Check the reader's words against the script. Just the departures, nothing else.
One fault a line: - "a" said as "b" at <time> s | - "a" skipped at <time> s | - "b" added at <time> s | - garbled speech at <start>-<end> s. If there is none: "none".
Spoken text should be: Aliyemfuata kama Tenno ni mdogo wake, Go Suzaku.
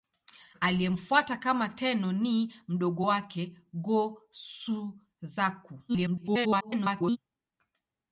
- garbled speech at 5.9-7.2 s